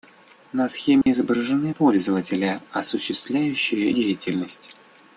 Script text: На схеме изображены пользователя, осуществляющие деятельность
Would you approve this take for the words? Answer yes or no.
yes